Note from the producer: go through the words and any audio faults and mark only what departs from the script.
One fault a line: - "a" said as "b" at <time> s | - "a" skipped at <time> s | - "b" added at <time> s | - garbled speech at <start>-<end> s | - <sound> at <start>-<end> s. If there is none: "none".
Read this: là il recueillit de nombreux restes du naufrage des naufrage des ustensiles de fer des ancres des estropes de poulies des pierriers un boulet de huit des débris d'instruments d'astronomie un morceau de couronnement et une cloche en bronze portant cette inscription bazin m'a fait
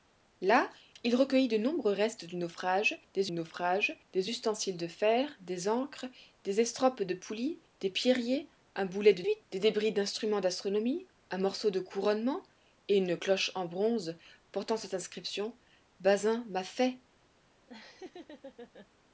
- laugh at 17.7-18.9 s